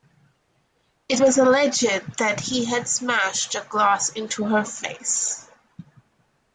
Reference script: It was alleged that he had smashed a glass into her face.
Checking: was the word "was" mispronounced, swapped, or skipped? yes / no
no